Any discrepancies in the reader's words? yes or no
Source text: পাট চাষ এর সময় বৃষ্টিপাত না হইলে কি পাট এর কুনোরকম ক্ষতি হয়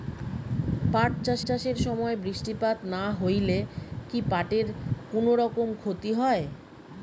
yes